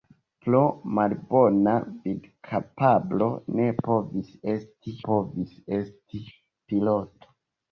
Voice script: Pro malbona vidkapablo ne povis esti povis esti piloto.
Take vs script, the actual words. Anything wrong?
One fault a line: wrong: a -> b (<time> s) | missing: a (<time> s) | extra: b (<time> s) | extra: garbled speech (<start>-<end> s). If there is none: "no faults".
no faults